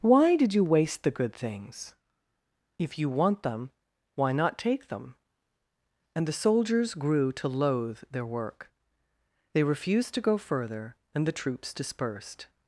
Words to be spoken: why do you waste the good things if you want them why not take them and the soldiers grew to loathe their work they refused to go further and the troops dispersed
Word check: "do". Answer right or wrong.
wrong